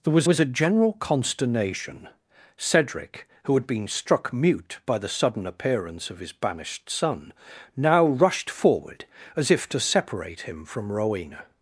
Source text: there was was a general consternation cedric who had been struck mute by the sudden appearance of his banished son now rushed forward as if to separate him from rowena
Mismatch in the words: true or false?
false